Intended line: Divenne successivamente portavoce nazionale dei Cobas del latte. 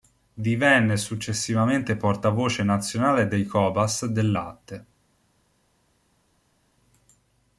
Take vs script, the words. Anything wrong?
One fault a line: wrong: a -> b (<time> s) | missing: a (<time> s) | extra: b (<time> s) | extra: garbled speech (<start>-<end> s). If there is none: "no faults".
no faults